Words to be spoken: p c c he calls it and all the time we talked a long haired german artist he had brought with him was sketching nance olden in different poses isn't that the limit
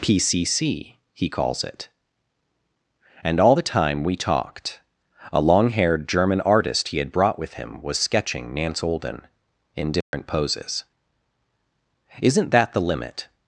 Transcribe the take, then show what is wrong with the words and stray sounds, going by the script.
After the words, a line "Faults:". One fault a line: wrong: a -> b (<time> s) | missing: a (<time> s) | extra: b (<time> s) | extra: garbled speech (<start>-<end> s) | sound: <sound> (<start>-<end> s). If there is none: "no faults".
p c c he calls it and all the time we talked a long haired german artist he had brought with him was sketching nance olden in different poses isn't that the limit
Faults:
sound: dropout (10.0-10.1 s)